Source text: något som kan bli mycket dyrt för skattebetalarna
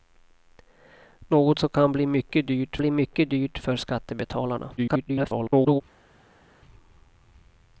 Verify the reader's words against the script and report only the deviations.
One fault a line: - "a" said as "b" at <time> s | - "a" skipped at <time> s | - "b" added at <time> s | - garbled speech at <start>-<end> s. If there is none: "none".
- "bli mycket dyrt" added at 2.8 s
- garbled speech at 4.8-5.8 s